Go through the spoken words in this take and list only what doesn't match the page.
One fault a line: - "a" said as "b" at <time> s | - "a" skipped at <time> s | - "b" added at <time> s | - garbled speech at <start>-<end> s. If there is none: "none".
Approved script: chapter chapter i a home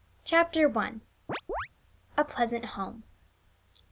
- "chapter" skipped at 0.8 s
- "pleasant" added at 2.2 s